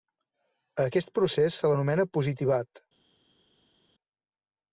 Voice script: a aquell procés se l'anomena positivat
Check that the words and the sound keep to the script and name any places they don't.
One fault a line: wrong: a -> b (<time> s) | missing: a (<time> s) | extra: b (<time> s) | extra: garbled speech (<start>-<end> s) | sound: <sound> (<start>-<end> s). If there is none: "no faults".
wrong: aquell -> aquest (0.9 s)